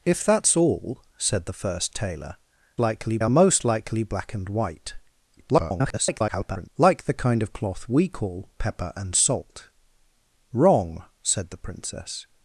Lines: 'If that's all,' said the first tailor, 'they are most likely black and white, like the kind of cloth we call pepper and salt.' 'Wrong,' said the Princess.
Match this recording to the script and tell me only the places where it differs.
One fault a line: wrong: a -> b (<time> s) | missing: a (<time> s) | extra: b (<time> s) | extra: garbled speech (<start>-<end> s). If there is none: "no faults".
wrong: they -> likely (2.8 s)
extra: garbled speech (5.4-6.7 s)